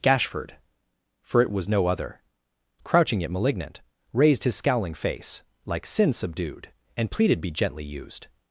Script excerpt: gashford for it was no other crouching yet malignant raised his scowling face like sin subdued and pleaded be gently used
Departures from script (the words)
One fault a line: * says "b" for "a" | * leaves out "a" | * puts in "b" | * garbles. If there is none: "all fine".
all fine